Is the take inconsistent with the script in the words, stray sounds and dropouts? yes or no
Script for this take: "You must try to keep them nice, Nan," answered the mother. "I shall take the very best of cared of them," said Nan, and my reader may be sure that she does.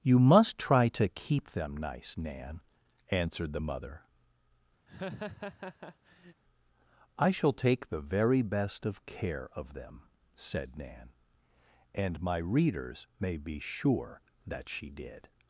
yes